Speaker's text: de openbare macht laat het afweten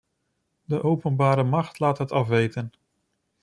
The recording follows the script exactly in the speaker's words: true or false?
true